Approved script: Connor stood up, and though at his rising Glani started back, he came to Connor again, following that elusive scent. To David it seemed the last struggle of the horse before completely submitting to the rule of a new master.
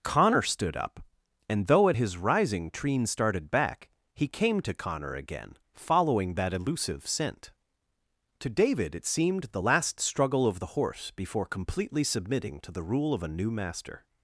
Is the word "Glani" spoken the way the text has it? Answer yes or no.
no